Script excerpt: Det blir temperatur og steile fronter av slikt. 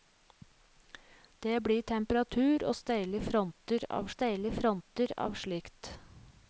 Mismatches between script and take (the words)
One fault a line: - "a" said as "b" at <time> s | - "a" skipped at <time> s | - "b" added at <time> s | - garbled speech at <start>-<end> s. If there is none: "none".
- "steile fronter av" added at 4.1 s